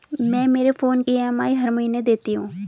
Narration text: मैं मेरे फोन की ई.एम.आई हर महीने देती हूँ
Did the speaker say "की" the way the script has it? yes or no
no